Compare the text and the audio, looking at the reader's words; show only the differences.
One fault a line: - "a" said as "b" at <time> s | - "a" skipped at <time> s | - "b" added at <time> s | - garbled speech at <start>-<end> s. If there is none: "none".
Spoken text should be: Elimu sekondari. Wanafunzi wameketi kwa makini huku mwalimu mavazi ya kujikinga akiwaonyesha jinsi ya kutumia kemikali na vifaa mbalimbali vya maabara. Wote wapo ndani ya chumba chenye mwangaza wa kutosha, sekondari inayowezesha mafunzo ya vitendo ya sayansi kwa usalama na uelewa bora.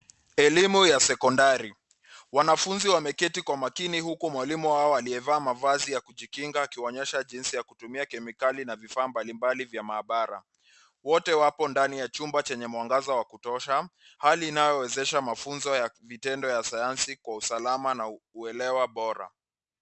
- "ya" added at 0.8 s
- "wao aliyevaa" added at 4.7 s
- "sekondari" said as "hali" at 14.2 s